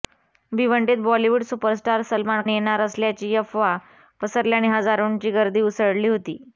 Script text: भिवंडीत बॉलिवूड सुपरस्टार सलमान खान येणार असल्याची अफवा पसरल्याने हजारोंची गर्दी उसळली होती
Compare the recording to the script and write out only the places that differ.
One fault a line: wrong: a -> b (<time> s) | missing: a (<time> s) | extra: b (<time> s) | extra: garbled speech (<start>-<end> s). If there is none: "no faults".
missing: खान (2.4 s)